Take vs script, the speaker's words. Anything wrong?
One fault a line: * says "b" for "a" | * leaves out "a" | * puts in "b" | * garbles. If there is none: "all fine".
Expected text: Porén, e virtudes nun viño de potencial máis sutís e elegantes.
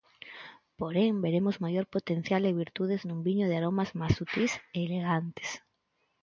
* puts in "veremos maior potencial"
* says "aromas" for "potencial"